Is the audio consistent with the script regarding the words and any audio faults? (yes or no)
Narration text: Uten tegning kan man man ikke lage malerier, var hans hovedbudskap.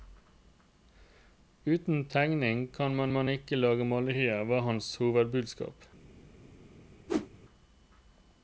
no